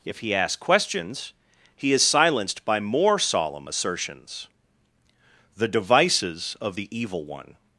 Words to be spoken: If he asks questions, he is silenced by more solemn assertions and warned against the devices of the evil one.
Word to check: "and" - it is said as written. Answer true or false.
false